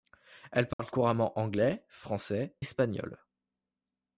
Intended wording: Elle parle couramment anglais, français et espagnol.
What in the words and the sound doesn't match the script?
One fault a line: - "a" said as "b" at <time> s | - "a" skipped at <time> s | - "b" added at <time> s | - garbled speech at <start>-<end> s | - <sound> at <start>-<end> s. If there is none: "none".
- dropout at 0.7-0.8 s
- "et" skipped at 2.5 s